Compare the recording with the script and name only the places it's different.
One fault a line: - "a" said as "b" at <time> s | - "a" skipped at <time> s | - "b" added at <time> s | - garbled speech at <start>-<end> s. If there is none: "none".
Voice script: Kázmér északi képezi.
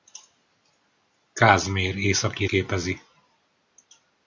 none